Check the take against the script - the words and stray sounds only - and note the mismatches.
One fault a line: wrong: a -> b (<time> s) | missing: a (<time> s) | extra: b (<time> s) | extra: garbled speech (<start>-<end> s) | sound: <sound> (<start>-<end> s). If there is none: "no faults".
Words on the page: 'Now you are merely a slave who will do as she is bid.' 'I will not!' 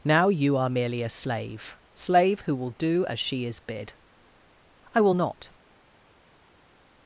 extra: slave (1.9 s)